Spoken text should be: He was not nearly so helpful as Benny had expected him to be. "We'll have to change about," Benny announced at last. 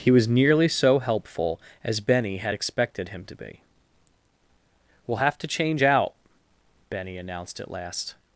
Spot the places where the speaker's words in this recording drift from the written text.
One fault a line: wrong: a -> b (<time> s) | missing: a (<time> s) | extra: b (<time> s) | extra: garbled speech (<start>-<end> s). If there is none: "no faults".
missing: not (0.3 s)
wrong: about -> out (5.8 s)